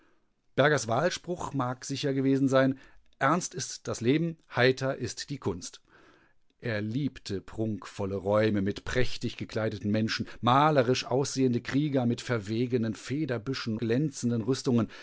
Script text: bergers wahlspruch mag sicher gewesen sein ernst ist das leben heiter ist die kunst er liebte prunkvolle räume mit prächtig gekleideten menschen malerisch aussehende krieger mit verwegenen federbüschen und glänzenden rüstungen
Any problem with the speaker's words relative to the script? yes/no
yes